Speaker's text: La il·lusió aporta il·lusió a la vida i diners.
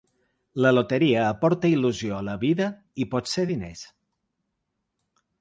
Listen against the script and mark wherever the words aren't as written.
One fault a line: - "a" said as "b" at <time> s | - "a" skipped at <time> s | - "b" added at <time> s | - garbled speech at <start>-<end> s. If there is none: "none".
- "il·lusió" said as "loteria" at 0.7 s
- "potser" added at 3.1 s